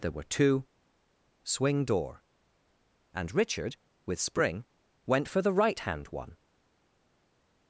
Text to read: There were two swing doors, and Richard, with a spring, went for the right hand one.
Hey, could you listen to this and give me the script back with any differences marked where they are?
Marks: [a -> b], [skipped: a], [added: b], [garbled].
There were two swing [doors, -> door] and Richard, with [skipped: a] spring, went for the right hand one.